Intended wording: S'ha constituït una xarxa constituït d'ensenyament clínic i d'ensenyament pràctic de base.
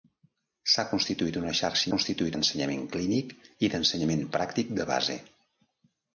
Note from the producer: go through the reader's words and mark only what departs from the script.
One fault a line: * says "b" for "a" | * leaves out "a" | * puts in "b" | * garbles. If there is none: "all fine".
all fine